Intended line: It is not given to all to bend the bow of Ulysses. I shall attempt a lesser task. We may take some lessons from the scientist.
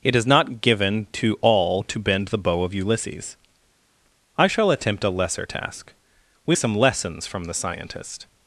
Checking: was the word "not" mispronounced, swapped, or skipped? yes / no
no